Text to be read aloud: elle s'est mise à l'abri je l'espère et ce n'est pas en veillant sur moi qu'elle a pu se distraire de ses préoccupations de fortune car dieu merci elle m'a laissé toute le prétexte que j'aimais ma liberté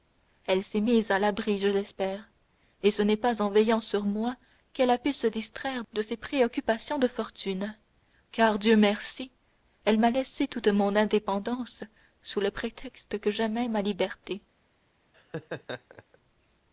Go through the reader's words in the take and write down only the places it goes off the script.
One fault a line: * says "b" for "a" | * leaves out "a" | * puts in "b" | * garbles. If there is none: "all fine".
* puts in "mon indépendance sous"